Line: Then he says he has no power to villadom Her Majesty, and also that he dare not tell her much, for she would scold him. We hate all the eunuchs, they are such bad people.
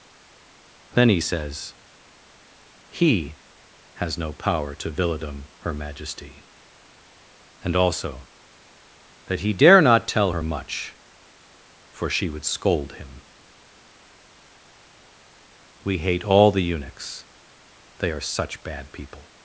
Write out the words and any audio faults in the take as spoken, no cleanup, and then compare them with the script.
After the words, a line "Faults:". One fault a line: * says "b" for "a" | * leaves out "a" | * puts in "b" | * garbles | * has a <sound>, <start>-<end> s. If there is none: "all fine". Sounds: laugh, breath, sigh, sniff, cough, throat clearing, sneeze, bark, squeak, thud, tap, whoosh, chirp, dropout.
Then he says he has no power to villadom Her Majesty, and also that he dare not tell her much, for she would scold him. We hate all the eunuchs, they are such bad people.
Faults:
all fine